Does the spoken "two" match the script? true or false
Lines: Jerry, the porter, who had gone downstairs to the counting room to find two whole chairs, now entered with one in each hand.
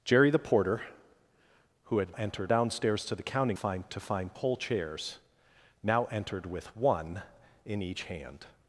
false